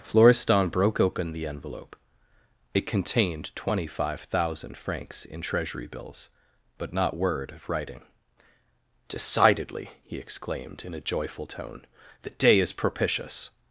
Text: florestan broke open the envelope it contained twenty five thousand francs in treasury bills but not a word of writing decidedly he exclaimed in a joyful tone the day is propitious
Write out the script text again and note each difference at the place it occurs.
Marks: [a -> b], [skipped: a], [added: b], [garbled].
florestan broke open the envelope it contained twenty five thousand francs in treasury bills but not [skipped: a] word of writing decidedly he exclaimed in a joyful tone the day is propitious